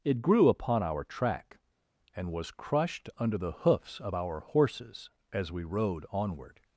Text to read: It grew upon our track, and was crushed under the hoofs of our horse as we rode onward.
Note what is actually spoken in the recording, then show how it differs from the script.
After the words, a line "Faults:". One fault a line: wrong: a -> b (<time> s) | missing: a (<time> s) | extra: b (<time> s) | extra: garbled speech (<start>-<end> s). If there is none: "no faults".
It grew upon our track, and was crushed under the hoofs of our horses as we rode onward.
Faults:
wrong: horse -> horses (4.4 s)